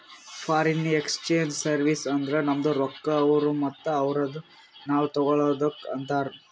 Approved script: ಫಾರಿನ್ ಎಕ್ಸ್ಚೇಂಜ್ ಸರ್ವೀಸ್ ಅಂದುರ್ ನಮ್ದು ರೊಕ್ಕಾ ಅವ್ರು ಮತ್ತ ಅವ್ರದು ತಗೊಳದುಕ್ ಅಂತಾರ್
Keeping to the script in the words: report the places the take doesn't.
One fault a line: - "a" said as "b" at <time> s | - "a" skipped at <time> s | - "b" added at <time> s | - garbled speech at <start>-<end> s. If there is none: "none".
- "ನಾವ್" added at 4.9 s